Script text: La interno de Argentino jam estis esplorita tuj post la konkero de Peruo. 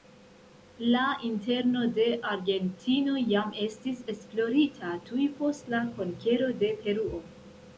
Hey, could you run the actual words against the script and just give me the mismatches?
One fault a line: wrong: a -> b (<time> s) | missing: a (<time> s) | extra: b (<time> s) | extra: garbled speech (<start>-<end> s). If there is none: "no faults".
no faults